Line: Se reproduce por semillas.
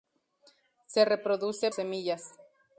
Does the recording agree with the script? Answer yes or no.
no